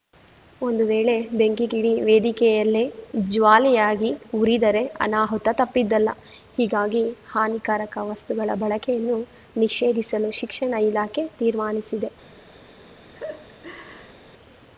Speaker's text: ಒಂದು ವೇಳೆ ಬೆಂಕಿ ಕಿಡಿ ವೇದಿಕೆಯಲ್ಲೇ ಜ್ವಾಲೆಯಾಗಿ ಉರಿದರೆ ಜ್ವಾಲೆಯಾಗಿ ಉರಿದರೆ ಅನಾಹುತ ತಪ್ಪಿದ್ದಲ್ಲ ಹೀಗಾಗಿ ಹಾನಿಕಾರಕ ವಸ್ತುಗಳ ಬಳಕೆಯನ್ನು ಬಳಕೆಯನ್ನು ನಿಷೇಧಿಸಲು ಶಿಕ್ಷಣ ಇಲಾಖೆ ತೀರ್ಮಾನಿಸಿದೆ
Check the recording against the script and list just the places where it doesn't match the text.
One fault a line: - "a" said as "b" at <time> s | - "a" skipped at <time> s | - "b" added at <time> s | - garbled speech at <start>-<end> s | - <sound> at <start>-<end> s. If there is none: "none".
- "ಜ್ವಾಲೆಯಾಗಿ ಉರಿದರೆ" skipped at 4.8 s
- "ಬಳಕೆಯನ್ನು" skipped at 9.2 s
- laugh at 13.1-14.2 s